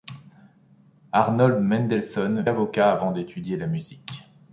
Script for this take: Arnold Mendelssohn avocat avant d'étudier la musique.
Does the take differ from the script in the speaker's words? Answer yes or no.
no